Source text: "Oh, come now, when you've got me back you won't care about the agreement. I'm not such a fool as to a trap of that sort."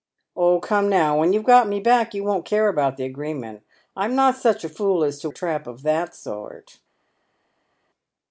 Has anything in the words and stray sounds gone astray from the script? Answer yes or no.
no